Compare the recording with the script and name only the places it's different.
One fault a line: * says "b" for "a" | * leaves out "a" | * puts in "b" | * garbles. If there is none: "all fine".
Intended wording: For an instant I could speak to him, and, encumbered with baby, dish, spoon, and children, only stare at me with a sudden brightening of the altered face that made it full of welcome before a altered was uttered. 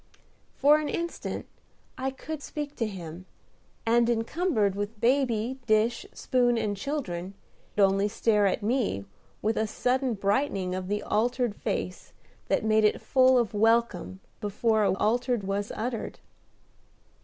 all fine